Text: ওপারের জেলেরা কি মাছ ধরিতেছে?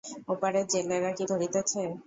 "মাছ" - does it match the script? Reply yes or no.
no